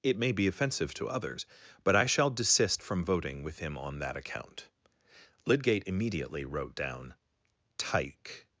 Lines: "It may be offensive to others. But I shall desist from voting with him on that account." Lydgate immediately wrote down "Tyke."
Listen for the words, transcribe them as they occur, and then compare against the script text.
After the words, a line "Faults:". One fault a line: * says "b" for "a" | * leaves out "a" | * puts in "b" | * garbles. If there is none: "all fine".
"It may be offensive to others. But I shall desist from voting with him on that account." Lydgate immediately wrote down "Tyke."
Faults:
all fine